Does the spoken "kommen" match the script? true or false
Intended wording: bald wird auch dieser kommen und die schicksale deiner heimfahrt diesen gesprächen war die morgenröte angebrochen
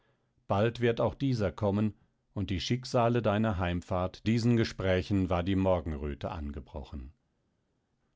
true